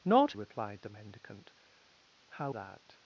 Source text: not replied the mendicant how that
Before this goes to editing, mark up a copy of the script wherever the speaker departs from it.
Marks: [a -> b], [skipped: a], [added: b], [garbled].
not replied the mendicant how that